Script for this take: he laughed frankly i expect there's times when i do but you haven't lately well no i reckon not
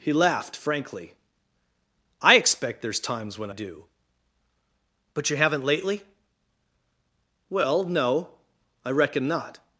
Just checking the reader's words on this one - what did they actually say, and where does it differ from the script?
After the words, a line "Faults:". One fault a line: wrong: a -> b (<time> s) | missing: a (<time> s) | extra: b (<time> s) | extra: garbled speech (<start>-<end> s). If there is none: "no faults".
he laughed frankly i expect there's times when do but you haven't lately well no i reckon not
Faults:
missing: i (3.5 s)